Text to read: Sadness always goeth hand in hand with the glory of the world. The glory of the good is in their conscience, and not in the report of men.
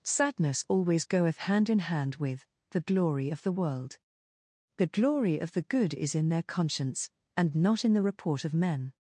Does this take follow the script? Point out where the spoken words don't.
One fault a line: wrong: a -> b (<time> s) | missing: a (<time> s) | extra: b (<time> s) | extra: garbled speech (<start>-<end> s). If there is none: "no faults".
no faults